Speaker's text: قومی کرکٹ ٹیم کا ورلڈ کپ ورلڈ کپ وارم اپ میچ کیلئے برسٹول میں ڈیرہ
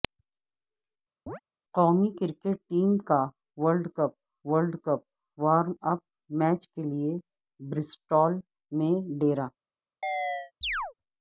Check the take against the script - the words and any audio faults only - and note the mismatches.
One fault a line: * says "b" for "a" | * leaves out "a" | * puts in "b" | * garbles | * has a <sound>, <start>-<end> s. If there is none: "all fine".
* has a chirp, 1.3-1.4 s
* has a chirp, 10.0-10.9 s